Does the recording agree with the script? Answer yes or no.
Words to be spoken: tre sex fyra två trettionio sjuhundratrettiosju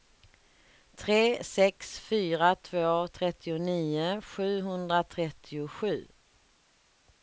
yes